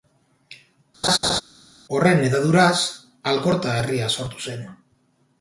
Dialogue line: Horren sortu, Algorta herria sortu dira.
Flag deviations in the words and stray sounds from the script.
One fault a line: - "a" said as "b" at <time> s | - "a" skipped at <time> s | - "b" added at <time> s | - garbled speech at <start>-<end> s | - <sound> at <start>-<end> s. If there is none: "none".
- laugh at 1.0-1.4 s
- "sortu" said as "hedaduraz" at 2.3 s
- "dira" said as "zen" at 4.5 s